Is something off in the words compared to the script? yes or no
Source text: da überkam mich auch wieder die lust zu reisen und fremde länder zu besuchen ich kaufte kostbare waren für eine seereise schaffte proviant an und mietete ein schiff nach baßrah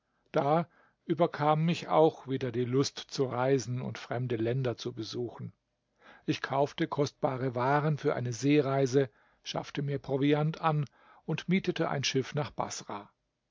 yes